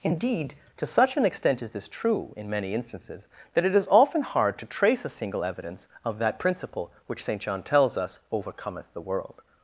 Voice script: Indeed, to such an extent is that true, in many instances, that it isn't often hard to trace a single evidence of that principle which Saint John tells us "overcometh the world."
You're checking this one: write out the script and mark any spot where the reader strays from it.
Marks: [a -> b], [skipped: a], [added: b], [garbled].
Indeed, to such an extent is [that -> this] true, in many instances, that it [isn't -> is] often hard to trace a single evidence of that principle which Saint John tells us "overcometh the world."